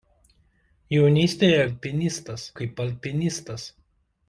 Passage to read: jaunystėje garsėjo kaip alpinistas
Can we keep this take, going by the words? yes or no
no